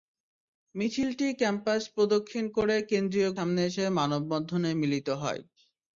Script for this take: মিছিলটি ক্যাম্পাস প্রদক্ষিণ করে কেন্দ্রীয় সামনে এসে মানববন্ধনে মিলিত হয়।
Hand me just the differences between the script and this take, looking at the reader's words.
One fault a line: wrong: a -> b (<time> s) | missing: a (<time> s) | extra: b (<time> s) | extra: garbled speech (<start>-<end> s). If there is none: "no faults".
no faults